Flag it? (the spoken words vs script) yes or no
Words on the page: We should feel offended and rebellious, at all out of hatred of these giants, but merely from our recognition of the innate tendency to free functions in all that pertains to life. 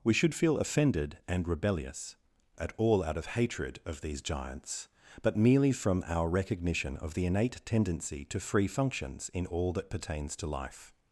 no